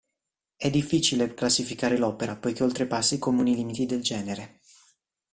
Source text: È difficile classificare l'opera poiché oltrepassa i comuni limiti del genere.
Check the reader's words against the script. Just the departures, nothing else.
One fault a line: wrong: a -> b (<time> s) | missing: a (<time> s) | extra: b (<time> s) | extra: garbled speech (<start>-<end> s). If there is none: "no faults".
no faults